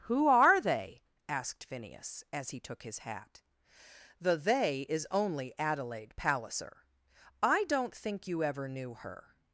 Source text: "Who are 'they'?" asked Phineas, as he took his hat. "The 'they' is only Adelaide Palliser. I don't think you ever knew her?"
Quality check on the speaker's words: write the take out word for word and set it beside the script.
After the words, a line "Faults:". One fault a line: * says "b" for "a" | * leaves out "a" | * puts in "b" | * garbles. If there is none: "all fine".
"Who are 'they'?" asked Phineas, as he took his hat. "The 'they' is only Adelaide Palliser. I don't think you ever knew her?"
Faults:
all fine